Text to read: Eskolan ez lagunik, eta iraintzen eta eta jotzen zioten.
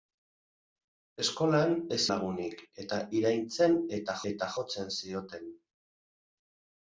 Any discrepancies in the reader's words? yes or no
no